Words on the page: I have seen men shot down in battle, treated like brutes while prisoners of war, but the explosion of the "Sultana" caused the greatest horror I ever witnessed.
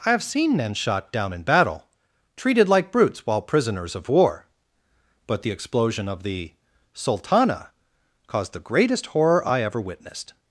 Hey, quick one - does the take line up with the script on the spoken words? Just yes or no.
yes